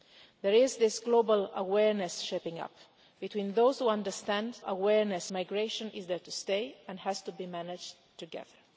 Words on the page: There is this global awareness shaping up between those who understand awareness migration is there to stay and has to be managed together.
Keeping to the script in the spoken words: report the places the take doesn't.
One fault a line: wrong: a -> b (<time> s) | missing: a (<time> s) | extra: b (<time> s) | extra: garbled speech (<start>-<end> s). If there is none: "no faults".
no faults